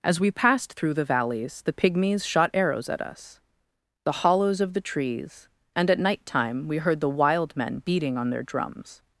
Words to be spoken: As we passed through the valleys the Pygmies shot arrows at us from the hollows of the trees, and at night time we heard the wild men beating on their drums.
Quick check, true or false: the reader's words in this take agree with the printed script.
false